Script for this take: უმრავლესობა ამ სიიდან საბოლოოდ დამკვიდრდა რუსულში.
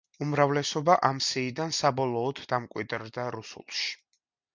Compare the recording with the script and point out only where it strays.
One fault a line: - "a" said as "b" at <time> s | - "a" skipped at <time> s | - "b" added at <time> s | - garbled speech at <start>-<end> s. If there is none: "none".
none